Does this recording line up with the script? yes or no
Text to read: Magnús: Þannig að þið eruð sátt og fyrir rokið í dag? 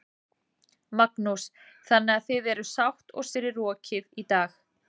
yes